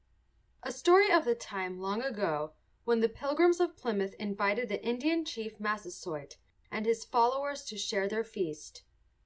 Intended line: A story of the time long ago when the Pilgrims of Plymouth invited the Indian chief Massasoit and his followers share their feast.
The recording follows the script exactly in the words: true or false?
false